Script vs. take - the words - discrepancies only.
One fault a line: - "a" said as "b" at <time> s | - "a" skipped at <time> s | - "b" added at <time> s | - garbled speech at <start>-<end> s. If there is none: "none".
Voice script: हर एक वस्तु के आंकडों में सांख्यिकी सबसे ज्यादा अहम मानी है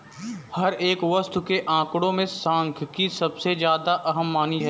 none